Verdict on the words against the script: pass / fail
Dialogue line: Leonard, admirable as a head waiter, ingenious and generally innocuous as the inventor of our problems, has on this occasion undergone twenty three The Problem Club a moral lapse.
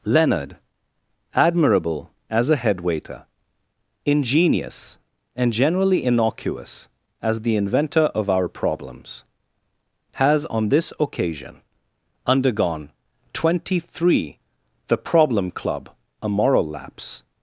pass